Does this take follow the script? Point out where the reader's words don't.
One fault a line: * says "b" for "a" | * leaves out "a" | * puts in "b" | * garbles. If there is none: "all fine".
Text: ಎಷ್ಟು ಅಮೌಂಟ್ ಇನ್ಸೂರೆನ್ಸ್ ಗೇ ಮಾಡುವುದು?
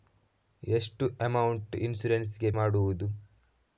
all fine